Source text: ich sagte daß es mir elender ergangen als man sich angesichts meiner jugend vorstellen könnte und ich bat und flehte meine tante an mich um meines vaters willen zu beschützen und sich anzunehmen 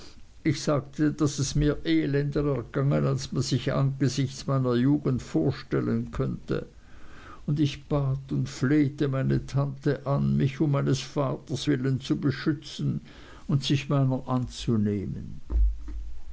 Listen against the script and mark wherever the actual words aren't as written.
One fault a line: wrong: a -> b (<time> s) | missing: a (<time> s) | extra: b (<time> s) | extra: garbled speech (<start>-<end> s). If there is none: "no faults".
extra: meiner (13.9 s)